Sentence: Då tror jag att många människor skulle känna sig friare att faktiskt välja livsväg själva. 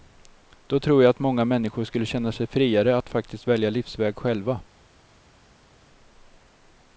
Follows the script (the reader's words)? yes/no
yes